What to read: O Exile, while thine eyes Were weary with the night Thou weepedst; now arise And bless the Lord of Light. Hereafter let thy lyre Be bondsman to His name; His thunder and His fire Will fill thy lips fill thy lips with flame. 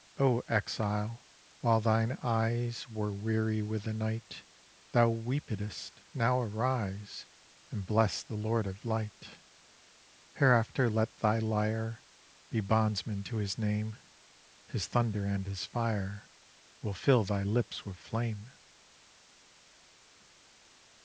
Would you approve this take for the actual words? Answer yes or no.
no